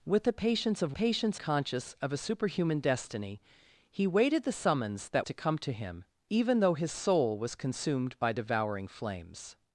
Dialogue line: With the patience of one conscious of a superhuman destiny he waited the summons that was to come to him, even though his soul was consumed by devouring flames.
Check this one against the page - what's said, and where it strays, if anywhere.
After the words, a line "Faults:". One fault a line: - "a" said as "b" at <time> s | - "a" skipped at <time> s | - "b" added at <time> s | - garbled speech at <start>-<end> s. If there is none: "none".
With the patience of patience conscious of a superhuman destiny he waited the summons that to come to him, even though his soul was consumed by devouring flames.
Faults:
- "one" said as "patience" at 0.9 s
- "was" skipped at 5.3 s